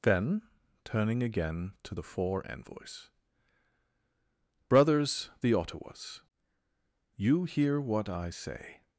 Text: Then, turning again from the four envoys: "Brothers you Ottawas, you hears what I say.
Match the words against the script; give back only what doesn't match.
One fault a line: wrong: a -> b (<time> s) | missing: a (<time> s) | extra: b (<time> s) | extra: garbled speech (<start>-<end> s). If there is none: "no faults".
wrong: from -> to (1.8 s)
wrong: you -> the (5.4 s)
wrong: hears -> hear (7.4 s)